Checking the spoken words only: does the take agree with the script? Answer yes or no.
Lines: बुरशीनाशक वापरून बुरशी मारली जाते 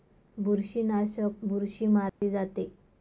no